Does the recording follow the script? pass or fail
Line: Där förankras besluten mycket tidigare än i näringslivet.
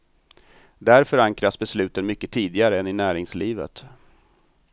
pass